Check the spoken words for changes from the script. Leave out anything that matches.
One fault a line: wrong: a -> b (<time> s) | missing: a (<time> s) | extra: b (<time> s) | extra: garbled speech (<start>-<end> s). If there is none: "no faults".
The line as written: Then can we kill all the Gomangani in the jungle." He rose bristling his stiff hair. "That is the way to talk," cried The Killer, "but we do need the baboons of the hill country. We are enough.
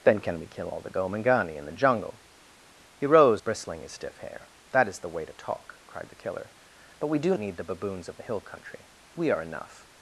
no faults